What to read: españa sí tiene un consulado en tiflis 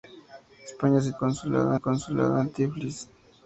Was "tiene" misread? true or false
true